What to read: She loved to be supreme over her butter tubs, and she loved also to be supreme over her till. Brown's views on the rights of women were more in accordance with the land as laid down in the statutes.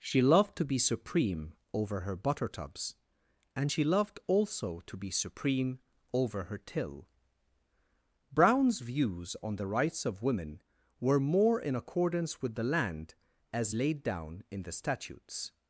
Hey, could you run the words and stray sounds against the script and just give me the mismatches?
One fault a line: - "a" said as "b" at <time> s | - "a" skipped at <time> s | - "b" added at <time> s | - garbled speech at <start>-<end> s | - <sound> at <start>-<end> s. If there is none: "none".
none